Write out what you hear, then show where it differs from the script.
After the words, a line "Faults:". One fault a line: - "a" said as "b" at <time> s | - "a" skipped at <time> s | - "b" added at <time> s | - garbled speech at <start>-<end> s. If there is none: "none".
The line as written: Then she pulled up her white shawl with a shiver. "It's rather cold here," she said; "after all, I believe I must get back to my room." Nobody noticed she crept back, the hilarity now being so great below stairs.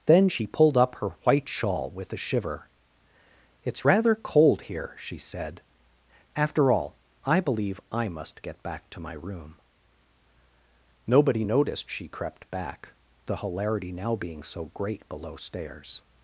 Then she pulled up her white shawl with a shiver. "It's rather cold here," she said; "after all, I believe I must get back to my room." Nobody noticed she crept back, the hilarity now being so great below stairs.
Faults:
none